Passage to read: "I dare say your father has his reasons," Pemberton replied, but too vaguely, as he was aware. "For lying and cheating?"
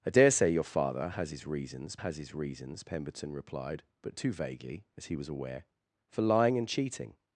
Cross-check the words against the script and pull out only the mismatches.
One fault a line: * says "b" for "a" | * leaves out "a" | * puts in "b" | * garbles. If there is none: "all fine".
* puts in "has his reasons"